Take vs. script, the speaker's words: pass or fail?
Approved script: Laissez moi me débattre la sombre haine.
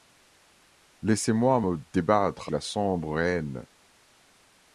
pass